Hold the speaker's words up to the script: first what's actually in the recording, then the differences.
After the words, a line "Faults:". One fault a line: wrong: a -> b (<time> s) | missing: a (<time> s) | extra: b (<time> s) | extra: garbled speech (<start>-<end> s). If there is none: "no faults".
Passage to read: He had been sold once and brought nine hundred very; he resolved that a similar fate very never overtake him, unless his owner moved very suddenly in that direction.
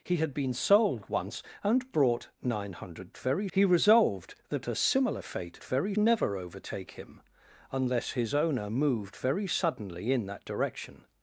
He had been sold once and brought nine hundred very; he resolved that a similar fate very never overtake him, unless his owner moved very suddenly in that direction.
Faults:
no faults